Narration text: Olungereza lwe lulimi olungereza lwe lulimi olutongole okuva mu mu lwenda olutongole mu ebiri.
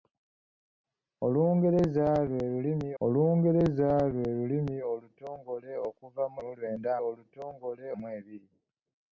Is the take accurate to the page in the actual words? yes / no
yes